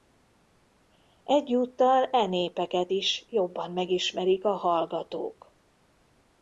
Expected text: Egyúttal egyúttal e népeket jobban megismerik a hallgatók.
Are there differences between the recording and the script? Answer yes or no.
yes